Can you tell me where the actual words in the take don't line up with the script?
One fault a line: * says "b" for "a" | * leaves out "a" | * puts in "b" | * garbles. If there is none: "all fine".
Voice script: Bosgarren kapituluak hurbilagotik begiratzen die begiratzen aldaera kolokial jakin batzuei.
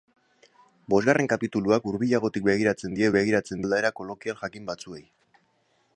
all fine